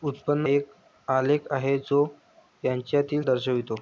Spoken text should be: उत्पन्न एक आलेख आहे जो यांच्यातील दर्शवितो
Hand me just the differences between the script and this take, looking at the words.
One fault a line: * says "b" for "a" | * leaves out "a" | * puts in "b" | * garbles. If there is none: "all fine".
all fine